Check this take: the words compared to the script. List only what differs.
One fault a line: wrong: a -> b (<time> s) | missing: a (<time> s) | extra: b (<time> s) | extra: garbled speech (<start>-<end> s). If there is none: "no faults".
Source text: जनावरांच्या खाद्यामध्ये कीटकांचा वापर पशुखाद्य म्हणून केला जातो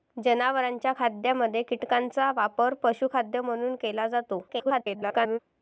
extra: garbled speech (4.5-5.4 s)